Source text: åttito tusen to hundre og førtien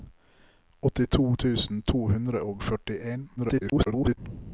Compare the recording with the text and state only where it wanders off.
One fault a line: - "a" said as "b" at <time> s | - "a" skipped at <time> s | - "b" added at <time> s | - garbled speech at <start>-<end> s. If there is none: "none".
- garbled speech at 3.4-4.2 s